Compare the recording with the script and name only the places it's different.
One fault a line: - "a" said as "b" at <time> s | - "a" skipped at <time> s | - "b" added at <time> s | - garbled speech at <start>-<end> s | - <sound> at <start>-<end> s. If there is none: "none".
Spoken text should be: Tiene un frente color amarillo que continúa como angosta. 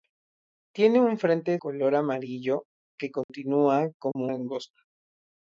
- dropout at 3.2-3.3 s
- dropout at 4.1-4.2 s